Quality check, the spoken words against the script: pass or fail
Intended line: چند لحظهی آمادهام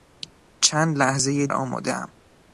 pass